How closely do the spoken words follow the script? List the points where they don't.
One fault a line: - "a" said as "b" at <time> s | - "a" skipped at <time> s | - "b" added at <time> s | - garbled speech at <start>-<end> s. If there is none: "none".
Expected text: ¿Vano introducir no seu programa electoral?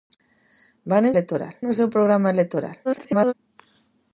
- "introducir" said as "electoral" at 1.1 s
- garbled speech at 2.8-3.3 s